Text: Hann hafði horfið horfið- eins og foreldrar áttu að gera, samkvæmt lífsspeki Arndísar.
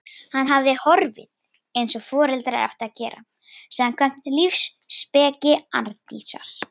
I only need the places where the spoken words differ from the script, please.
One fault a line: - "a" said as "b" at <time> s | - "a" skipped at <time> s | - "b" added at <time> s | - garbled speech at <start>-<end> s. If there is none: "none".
- "horfið" skipped at 1.8 s